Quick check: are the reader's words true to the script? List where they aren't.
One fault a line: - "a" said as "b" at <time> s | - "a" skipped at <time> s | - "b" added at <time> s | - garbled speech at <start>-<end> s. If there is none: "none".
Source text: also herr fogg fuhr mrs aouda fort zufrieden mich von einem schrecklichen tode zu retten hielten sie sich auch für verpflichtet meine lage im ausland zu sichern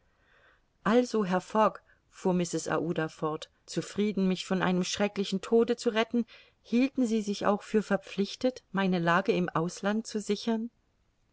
none